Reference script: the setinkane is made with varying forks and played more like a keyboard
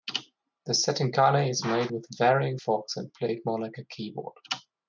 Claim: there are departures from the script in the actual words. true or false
false